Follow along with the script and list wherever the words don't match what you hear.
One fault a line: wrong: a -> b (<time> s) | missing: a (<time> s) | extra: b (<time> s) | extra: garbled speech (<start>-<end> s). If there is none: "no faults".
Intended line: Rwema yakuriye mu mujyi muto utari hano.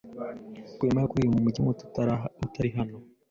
no faults